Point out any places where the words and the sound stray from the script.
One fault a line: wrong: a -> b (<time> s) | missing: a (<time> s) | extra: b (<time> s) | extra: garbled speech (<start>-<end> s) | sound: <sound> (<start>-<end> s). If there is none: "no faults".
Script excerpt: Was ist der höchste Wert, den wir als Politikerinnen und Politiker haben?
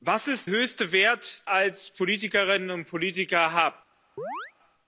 missing: der (0.5 s)
missing: den wir (1.5 s)
sound: chirp (4.2-4.5 s)